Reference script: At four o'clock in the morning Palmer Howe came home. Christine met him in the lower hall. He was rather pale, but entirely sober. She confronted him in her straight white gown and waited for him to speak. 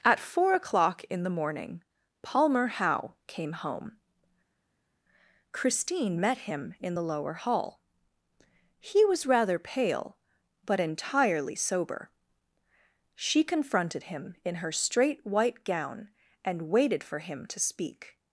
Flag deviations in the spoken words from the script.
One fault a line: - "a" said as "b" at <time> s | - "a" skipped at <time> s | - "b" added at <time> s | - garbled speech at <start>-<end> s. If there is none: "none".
none